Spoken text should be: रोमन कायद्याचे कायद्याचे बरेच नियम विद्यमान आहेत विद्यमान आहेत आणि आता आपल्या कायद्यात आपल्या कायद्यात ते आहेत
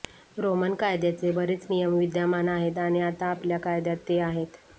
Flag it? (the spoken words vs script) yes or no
yes